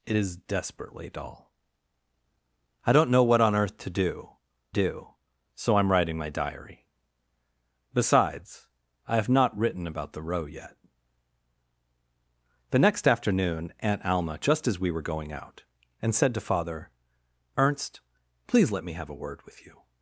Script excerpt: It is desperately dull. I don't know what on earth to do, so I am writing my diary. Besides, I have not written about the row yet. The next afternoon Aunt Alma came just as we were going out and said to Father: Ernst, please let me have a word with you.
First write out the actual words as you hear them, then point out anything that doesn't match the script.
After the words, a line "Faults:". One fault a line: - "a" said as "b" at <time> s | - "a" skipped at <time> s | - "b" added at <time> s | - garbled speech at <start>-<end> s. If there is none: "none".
It is desperately dull. I don't know what on earth to do do, so I am writing my diary. Besides, I have not written about the row yet. The next afternoon Aunt Alma just as we were going out and said to Father: Ernst, please let me have a word with you.
Faults:
- "do" added at 4.7 s
- "came" skipped at 14.4 s